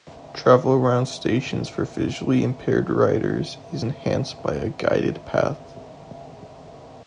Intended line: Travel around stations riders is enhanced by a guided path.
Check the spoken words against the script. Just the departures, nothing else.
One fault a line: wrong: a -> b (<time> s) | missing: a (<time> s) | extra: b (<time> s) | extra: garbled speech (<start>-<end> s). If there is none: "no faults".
extra: for visually impaired (1.7 s)